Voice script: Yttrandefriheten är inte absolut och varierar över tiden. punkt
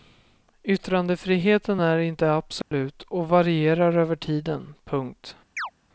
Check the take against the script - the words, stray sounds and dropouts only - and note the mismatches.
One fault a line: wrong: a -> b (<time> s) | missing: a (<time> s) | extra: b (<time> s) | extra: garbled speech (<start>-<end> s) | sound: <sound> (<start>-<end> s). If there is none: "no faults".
sound: dropout (2.6-2.7 s)
sound: chirp (5.6-5.7 s)